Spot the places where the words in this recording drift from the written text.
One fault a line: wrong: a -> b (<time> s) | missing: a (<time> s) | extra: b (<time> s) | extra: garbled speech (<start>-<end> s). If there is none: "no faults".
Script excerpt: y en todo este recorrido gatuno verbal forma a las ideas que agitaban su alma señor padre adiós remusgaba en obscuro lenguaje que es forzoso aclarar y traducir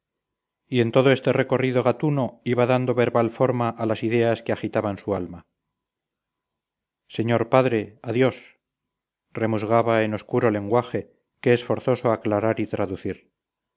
extra: iba dando (2.4 s)